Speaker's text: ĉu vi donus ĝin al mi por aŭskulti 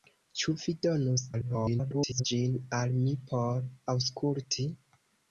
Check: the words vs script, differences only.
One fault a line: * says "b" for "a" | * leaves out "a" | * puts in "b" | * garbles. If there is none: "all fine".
* garbles